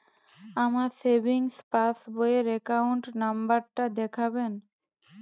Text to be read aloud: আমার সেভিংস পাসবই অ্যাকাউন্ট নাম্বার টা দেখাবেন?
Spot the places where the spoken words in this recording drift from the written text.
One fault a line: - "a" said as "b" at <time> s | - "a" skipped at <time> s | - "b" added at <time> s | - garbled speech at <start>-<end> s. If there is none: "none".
- "র" added at 2.4 s